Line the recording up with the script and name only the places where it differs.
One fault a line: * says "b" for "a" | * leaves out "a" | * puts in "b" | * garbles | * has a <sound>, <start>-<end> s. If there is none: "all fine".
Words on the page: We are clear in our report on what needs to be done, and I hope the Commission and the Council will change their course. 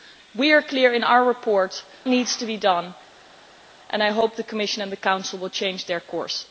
* leaves out "on what"